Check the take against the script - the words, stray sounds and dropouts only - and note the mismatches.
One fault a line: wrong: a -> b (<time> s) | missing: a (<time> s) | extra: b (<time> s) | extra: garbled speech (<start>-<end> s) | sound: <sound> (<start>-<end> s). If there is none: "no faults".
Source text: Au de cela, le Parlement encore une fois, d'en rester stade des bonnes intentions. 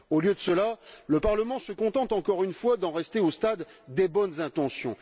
extra: lieu (0.2 s)
extra: se contente (1.6 s)
extra: au (3.2 s)